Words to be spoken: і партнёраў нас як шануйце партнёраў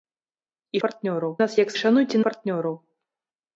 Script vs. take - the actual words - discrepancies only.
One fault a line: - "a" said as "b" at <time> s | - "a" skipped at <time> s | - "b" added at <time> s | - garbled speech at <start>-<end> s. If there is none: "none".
none